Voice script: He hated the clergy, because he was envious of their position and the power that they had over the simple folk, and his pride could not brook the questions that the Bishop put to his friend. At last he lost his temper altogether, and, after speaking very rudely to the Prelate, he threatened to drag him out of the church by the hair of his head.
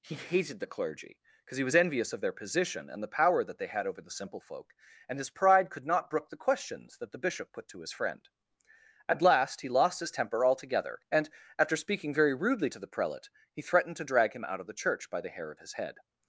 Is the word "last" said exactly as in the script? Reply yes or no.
yes